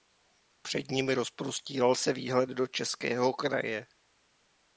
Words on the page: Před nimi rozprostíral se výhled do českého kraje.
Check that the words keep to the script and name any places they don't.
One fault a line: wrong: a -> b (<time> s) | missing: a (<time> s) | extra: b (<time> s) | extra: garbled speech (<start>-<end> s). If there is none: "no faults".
no faults